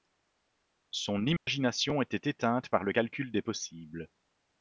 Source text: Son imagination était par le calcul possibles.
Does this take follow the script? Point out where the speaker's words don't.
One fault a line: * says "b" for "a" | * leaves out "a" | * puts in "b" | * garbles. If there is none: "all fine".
* puts in "éteinte"
* puts in "des"